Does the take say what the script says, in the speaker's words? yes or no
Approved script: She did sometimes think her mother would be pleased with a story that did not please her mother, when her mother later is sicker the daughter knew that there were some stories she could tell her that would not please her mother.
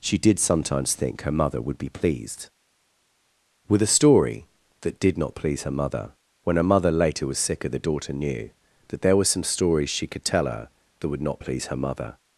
no